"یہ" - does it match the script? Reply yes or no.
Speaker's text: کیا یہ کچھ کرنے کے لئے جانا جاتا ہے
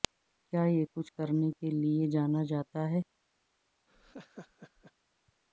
yes